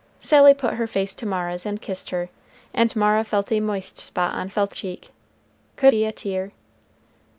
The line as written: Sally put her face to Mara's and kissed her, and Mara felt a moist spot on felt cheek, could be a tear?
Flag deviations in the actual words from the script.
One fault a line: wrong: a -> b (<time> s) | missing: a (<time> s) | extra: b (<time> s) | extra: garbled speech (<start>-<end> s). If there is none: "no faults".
no faults